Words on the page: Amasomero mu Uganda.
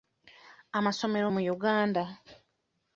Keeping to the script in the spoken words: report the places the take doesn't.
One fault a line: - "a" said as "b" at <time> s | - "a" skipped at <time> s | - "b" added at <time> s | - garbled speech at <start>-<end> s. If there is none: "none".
none